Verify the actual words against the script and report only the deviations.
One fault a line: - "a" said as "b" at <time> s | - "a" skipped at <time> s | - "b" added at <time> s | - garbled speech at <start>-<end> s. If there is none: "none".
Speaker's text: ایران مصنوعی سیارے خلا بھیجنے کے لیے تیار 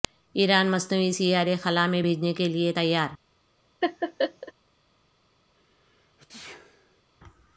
- "میں" added at 1.9 s